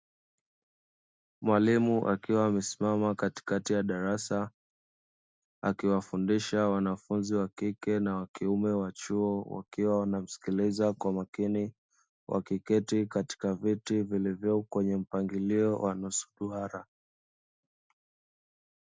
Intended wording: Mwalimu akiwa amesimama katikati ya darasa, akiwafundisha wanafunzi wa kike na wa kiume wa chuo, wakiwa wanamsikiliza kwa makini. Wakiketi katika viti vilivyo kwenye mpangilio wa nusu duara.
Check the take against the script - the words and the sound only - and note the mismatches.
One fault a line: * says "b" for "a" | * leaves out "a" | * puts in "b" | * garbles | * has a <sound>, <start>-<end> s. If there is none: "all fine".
all fine